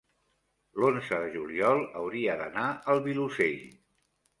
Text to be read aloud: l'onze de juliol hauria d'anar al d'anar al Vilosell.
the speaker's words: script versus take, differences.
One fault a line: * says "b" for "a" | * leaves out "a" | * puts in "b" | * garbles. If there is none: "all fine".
* leaves out "d'anar al"